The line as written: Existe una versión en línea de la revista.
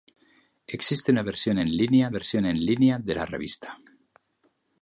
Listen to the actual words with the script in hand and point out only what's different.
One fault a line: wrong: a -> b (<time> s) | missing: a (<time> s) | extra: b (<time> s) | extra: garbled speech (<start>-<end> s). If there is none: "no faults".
extra: versión en línea (2.1 s)